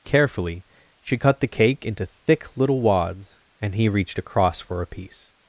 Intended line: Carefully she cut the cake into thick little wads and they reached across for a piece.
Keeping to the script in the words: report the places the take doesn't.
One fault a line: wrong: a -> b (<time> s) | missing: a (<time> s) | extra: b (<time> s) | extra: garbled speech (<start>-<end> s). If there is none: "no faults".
wrong: they -> he (3.8 s)